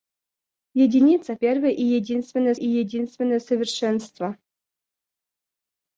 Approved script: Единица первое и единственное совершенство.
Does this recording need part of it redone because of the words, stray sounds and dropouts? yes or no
yes